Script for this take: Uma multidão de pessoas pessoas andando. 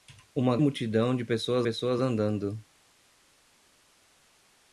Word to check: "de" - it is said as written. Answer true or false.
true